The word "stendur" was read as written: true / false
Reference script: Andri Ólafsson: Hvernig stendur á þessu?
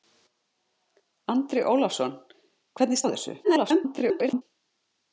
false